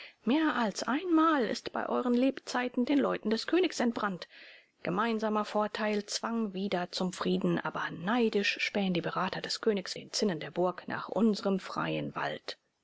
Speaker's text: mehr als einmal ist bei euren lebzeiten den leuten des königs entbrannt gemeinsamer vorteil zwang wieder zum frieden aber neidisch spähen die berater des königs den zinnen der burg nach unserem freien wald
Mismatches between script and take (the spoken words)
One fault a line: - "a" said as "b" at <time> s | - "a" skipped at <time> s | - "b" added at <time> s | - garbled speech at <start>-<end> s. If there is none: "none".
none